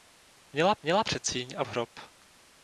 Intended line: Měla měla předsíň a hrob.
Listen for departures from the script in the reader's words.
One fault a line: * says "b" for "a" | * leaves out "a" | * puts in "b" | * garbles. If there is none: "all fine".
all fine